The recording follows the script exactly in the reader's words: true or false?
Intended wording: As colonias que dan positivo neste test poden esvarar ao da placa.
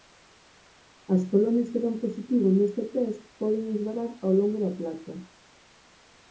false